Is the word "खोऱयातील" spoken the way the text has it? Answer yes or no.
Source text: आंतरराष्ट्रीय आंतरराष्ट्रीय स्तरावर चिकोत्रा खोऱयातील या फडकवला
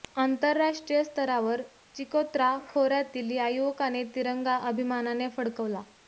yes